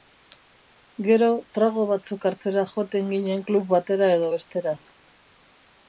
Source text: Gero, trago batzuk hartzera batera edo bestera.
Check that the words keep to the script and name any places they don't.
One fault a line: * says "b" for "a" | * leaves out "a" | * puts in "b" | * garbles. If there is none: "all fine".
* puts in "joaten ginen klub"